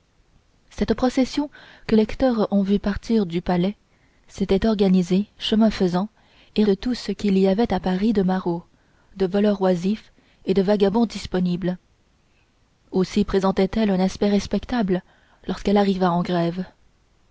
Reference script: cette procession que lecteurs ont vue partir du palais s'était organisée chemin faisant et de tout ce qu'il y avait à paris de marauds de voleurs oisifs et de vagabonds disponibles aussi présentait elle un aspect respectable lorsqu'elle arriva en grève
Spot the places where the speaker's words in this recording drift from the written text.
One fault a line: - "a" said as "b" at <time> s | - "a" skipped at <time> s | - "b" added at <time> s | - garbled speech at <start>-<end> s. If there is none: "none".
none